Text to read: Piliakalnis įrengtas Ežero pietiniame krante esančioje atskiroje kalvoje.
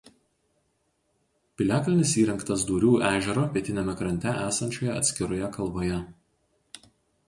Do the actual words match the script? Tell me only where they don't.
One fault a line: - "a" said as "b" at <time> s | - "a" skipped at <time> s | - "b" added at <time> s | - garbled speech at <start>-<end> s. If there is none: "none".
- "Dūrių" added at 2.7 s